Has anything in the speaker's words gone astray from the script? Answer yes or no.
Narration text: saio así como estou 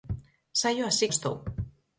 yes